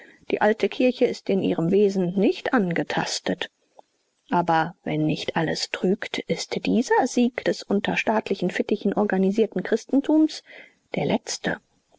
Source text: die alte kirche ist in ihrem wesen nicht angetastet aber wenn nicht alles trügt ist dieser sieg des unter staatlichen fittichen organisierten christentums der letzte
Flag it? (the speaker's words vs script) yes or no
no